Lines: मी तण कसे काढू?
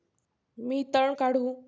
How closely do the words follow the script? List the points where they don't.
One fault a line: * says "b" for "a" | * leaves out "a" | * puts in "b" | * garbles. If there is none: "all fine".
* leaves out "कसे"